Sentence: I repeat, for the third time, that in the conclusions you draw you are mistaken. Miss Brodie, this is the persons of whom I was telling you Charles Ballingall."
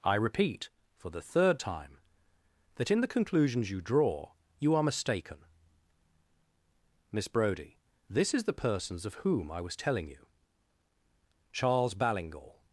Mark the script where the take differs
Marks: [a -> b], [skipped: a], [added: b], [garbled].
I repeat, for the third time, that in the conclusions you draw you are mistaken. Miss Brodie, this is the persons of whom I was telling you Charles Ballingall."